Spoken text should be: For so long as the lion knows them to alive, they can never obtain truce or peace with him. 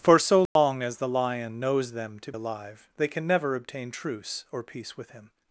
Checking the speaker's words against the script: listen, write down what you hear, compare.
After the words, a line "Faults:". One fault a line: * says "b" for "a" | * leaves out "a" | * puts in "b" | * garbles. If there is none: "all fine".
For so long as the lion knows them to alive, they can never obtain truce or peace with him.
Faults:
all fine